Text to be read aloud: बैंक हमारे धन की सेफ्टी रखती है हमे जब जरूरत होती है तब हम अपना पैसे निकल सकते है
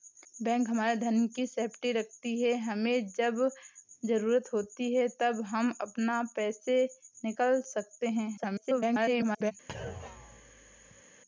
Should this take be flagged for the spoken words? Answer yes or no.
yes